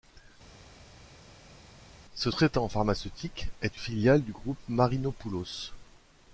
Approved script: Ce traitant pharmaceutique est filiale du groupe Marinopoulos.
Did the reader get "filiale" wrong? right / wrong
right